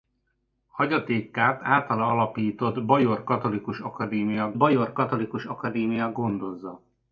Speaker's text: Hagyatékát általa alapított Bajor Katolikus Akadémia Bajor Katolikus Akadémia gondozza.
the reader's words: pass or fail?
pass